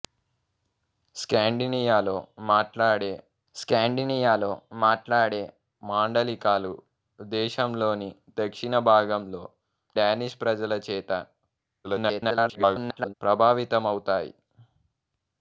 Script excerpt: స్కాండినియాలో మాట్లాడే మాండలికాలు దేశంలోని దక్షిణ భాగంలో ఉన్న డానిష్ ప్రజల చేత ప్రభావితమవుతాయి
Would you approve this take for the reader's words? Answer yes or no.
no